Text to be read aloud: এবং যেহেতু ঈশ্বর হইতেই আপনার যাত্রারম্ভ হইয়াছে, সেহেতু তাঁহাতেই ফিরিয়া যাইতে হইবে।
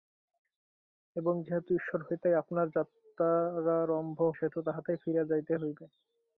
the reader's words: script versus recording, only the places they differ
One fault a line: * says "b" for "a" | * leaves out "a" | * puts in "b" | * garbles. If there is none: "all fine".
* leaves out "হইয়াছে"